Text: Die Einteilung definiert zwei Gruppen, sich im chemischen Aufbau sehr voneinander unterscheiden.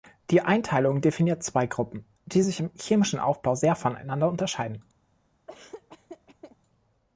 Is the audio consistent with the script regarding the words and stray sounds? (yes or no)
no